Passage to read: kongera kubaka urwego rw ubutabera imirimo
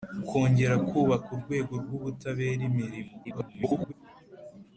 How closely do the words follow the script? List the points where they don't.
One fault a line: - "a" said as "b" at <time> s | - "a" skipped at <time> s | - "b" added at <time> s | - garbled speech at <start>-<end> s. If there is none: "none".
- garbled speech at 3.2-3.9 s